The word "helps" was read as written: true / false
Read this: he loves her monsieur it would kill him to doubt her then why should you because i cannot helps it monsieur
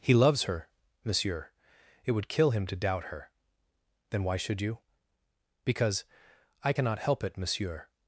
false